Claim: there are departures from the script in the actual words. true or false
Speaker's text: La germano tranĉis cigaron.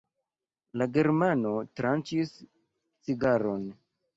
false